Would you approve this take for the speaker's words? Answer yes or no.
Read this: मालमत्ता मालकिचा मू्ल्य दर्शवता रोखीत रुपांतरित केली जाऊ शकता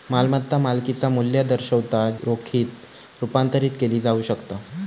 yes